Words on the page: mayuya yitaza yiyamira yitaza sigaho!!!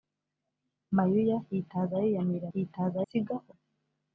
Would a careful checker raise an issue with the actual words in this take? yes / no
no